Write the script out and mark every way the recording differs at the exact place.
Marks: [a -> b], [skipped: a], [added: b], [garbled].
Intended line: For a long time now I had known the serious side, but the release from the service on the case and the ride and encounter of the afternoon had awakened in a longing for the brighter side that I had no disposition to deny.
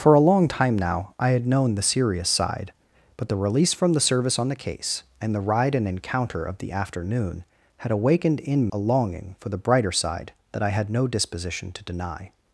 For a long time now I had known the serious side, but the release from the service on the case and the ride and encounter of the afternoon had awakened in a longing for the brighter side that I had no disposition to deny.